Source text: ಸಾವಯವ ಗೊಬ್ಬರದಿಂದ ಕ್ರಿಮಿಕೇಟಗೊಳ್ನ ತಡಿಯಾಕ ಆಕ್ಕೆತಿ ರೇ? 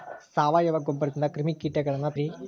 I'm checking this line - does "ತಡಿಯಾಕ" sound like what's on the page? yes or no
no